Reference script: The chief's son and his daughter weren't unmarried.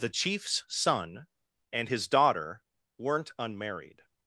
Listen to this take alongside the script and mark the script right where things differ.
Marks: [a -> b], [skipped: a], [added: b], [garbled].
The chief's son and his daughter weren't unmarried.